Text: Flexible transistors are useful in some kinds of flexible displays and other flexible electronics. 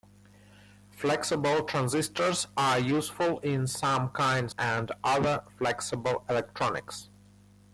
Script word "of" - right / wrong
wrong